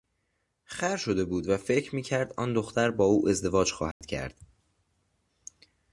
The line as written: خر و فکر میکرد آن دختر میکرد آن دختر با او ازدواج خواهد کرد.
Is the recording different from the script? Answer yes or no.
yes